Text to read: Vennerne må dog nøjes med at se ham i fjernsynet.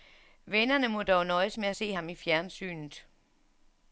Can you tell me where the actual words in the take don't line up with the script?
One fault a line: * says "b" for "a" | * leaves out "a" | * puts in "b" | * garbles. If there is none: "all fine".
all fine